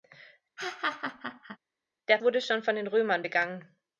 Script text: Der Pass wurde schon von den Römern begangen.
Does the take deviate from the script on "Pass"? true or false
true